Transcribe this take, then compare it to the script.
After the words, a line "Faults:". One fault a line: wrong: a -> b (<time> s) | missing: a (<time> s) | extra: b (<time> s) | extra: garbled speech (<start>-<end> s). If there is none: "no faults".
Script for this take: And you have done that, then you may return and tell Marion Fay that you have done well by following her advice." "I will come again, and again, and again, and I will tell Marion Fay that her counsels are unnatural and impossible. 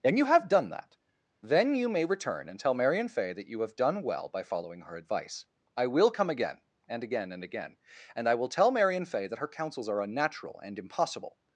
And you have done that, then you may return and tell Marion Fay that you have done well by following her advice." "I will come again, and again, and again, and I will tell Marion Fay that her counsels are unnatural and impossible.
Faults:
no faults